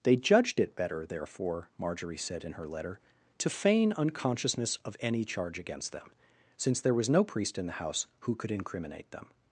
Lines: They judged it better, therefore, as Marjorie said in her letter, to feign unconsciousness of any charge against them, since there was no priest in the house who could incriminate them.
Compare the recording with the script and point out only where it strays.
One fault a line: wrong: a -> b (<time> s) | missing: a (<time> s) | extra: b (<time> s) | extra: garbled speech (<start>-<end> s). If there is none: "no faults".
missing: as (1.7 s)